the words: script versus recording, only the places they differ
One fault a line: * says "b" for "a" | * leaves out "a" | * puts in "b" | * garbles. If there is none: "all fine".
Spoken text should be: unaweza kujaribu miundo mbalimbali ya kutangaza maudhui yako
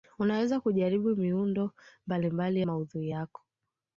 * leaves out "ya kutangaza"